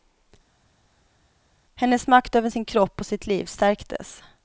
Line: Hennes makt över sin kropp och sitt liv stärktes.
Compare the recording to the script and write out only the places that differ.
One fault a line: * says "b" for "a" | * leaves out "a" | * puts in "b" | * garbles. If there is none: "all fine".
all fine